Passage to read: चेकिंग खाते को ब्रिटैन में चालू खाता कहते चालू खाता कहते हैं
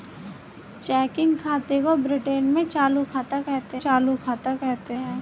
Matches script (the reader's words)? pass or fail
pass